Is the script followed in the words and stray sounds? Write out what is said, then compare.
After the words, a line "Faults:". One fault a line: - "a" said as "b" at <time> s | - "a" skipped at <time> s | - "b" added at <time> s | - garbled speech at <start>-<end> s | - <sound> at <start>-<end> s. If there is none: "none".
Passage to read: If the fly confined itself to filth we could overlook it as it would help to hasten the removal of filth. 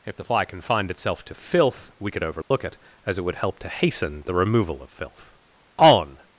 If the fly confined itself to filth we could overlook it as it would help to hasten the removal of filth. On
Faults:
- dropout at 2.4-2.5 s
- "On" added at 5.8 s